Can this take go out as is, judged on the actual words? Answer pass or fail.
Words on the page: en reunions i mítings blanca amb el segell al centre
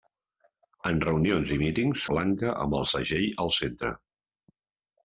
pass